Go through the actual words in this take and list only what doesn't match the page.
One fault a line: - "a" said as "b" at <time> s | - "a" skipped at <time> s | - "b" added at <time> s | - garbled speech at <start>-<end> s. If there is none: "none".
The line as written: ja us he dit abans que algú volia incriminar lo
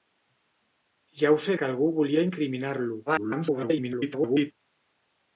- "dit abans" skipped at 1.6 s
- garbled speech at 3.1-4.5 s